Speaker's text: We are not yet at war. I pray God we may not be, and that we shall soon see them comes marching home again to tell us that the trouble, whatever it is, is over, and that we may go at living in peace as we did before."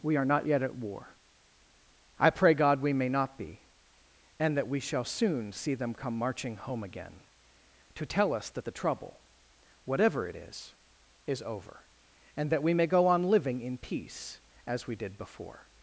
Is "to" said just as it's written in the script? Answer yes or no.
yes